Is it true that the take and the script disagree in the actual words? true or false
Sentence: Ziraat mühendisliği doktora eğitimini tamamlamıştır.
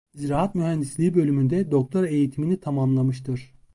true